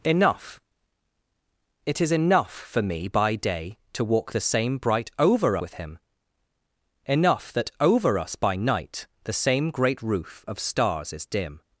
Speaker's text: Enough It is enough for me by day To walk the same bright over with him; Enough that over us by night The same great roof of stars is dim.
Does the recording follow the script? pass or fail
pass